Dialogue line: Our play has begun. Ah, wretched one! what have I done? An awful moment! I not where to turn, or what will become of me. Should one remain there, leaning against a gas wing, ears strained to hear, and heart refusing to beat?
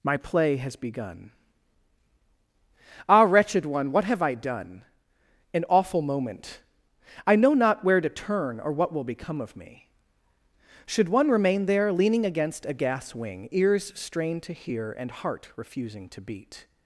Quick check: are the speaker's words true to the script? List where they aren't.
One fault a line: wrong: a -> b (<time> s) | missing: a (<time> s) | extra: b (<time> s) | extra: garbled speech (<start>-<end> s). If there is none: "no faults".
wrong: Our -> My (0.0 s)
extra: know (7.3 s)